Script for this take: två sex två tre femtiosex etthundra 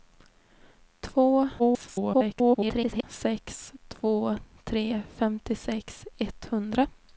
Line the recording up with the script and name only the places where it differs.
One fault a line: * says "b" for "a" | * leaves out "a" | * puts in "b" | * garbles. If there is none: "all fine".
* garbles